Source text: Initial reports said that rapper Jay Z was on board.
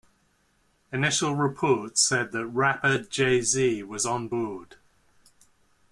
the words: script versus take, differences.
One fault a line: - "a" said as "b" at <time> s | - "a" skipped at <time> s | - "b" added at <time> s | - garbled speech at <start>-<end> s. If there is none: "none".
none